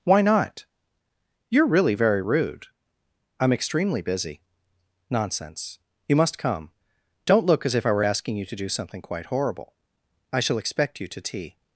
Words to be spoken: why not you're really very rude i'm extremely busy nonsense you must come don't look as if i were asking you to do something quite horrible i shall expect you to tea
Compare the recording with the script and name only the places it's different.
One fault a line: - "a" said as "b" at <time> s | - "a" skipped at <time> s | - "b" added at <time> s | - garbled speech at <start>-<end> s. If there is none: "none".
none